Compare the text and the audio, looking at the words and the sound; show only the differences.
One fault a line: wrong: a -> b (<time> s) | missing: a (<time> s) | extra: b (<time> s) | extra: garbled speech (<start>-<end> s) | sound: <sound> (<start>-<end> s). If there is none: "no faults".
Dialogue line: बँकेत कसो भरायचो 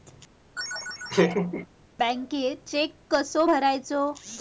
sound: laugh (0.6-1.7 s)
extra: चेक (2.7 s)